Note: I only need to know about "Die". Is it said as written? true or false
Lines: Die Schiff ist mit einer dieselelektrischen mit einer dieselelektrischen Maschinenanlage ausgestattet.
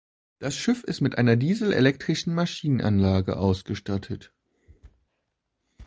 false